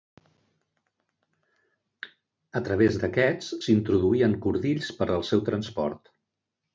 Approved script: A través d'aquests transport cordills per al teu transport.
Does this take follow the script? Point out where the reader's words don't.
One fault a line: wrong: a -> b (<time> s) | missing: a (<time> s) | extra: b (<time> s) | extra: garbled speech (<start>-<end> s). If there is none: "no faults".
wrong: transport -> s'introduïen (3.7 s)
wrong: teu -> seu (5.3 s)